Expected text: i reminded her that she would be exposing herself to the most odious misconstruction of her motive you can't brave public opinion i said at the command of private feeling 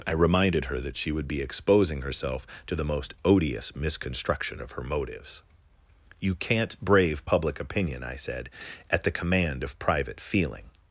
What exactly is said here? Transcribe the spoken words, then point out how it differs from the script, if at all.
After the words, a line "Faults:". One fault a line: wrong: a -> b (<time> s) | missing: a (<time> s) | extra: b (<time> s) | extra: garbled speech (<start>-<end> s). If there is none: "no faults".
i reminded her that she would be exposing herself to the most odious misconstruction of her motives you can't brave public opinion i said at the command of private feeling
Faults:
wrong: motive -> motives (4.8 s)